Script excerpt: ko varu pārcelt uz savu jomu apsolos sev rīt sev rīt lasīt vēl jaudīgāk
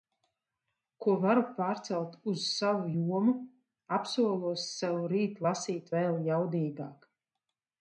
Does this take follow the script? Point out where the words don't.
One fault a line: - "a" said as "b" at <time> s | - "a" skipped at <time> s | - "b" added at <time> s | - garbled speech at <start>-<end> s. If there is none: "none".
- "sev rīt" skipped at 5.4 s